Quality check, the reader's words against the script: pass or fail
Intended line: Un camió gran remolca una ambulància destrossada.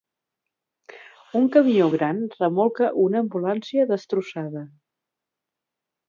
pass